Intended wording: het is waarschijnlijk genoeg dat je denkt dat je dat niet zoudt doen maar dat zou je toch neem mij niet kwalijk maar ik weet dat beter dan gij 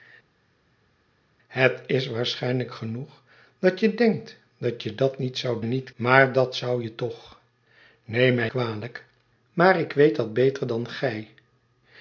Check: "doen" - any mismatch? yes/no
yes